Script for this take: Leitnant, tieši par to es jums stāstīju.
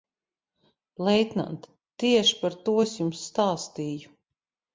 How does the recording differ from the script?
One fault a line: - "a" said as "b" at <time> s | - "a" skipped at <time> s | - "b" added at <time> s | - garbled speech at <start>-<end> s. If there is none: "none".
none